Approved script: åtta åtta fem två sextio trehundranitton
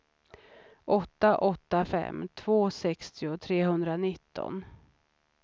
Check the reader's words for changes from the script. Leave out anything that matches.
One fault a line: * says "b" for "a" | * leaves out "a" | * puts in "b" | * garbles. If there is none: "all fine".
all fine